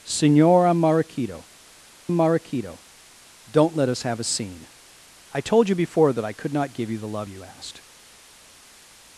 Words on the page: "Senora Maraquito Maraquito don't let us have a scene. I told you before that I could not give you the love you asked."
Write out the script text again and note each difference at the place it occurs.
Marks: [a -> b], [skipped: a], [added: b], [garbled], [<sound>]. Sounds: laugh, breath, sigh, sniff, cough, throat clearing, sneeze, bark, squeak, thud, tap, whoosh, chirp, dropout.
"Senora Maraquito Maraquito don't let us have a scene. I told you before that I could not give you the love you asked."